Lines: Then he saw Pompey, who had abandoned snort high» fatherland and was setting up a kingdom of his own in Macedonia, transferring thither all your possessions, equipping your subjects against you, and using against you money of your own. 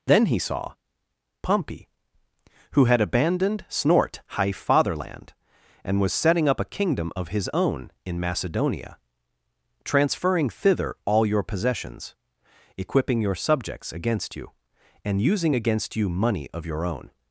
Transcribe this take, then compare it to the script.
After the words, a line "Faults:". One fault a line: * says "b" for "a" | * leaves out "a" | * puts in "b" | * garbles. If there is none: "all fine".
Then he saw Pompey, who had abandoned snort high» fatherland and was setting up a kingdom of his own in Macedonia, transferring thither all your possessions, equipping your subjects against you, and using against you money of your own.
Faults:
all fine